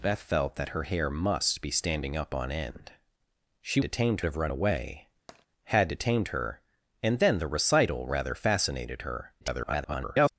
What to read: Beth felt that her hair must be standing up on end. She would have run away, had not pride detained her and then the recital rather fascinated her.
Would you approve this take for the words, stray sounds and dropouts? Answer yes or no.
no